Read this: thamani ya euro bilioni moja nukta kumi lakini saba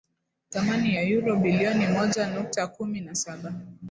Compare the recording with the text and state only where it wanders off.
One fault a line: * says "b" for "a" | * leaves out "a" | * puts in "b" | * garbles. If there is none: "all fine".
* says "na" for "lakini"